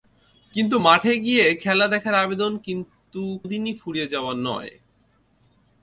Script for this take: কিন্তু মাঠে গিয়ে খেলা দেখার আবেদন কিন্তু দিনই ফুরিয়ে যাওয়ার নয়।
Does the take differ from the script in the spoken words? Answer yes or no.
no